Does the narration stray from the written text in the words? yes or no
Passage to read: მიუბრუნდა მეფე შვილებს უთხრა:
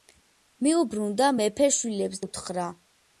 no